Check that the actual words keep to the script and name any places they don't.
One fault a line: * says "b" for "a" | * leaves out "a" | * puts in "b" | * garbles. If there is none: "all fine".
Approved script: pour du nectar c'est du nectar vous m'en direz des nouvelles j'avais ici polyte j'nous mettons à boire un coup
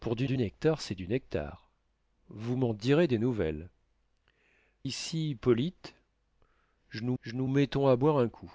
* puts in "du"
* leaves out "j'avais"
* puts in "j'nous"